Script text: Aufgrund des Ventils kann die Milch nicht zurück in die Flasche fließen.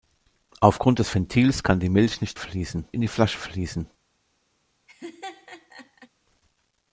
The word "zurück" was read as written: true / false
false